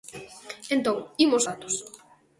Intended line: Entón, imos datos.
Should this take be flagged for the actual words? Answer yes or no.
no